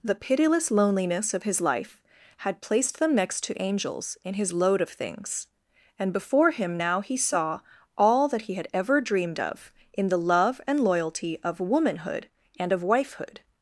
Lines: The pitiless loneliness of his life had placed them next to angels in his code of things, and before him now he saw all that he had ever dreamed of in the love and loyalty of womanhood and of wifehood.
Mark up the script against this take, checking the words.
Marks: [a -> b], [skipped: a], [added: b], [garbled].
The pitiless loneliness of his life had placed them next to angels in his [code -> load] of things, and before him now he saw all that he had ever dreamed of in the love and loyalty of womanhood and of wifehood.